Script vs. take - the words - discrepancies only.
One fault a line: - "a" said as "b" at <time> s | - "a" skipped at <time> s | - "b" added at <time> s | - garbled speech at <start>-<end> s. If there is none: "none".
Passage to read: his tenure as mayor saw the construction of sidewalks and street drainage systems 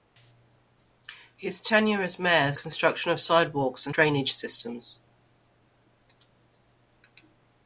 - "saw the" skipped at 2.5 s
- "street" skipped at 4.0 s